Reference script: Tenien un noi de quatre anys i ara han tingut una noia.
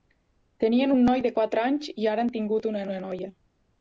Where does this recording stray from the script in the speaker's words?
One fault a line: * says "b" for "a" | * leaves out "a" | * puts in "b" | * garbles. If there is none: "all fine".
* puts in "una"